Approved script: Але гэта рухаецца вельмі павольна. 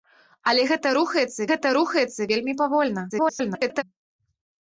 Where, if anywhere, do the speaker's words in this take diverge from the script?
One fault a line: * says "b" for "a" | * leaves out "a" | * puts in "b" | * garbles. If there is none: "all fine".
* puts in "гэта рухаецца"
* garbles